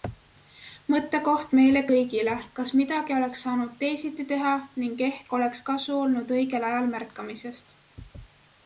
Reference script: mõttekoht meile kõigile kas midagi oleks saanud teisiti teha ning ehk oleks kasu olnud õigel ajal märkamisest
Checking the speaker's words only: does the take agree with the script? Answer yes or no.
yes